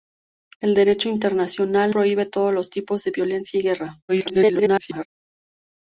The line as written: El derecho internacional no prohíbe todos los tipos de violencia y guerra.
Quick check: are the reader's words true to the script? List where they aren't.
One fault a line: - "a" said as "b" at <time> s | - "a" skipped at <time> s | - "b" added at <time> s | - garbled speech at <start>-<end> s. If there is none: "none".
- "no" skipped at 1.9 s
- garbled speech at 4.1-5.1 s